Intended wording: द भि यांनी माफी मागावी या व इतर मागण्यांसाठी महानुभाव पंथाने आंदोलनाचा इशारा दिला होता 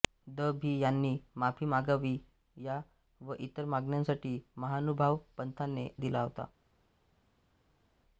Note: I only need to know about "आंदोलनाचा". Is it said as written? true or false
false